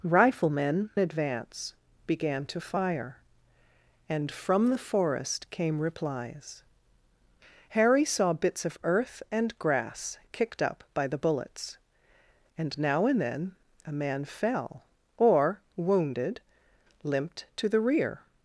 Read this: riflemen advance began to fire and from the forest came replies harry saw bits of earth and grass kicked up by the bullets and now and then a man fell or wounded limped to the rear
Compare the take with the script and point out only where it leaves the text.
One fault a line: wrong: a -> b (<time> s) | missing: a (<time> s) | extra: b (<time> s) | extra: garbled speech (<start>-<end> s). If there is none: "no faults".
no faults